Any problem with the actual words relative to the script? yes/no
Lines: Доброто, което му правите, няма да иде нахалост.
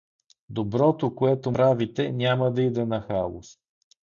yes